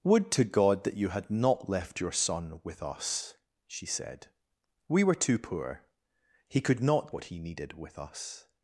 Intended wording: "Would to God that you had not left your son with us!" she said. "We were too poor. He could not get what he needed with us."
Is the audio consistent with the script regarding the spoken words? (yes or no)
no